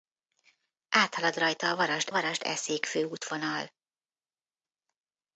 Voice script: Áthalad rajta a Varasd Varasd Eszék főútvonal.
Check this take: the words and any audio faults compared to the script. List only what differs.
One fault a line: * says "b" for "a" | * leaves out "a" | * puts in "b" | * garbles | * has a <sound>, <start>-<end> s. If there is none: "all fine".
all fine